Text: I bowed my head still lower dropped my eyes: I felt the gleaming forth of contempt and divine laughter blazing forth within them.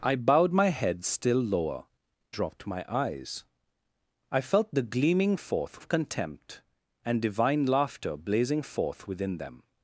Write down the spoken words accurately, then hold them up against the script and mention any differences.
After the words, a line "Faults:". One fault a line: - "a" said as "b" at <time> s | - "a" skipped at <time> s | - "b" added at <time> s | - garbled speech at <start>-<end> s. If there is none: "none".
I bowed my head still lower dropped my eyes: I felt the gleaming forth of contempt and divine laughter blazing forth within them.
Faults:
none